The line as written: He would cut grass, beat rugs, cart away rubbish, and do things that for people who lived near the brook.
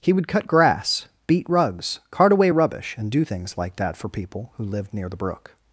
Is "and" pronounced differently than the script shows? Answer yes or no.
no